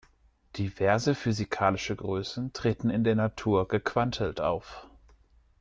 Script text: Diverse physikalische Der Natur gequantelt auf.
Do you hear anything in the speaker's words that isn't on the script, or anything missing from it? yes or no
yes